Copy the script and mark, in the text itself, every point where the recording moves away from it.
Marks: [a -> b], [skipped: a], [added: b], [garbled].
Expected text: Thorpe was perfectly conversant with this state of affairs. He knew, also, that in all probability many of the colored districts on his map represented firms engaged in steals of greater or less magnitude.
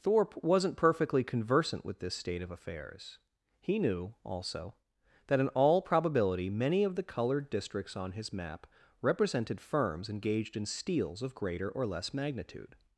Thorpe [was -> wasn't] perfectly conversant with this state of affairs. He knew, also, that in all probability many of the colored districts on his map represented firms engaged in steals of greater or less magnitude.